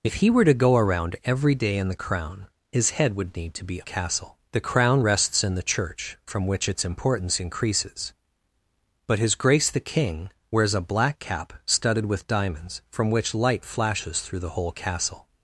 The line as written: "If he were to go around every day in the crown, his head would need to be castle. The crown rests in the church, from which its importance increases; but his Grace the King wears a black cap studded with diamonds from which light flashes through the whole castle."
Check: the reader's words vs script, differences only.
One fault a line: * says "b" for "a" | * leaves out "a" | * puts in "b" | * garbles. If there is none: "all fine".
all fine